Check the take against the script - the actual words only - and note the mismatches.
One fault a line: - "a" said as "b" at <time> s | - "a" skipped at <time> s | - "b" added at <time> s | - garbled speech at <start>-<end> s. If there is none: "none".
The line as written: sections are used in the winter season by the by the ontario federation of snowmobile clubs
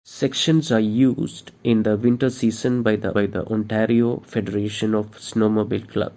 none